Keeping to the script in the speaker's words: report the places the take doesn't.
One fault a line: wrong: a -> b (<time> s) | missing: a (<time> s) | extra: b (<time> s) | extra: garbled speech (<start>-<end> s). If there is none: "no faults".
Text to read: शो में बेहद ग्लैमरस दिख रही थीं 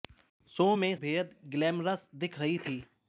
no faults